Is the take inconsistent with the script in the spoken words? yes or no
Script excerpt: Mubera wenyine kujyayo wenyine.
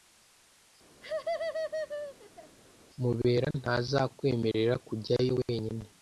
yes